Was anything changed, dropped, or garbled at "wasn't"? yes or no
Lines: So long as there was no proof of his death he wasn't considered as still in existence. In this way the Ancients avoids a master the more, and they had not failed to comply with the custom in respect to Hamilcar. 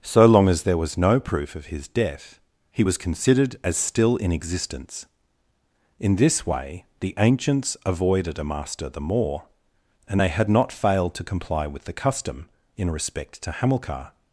yes